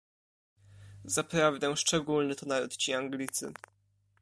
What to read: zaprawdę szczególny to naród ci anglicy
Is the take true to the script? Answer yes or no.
yes